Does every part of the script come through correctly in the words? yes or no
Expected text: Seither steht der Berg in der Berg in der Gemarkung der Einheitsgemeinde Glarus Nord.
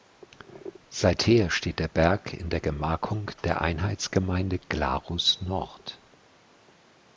no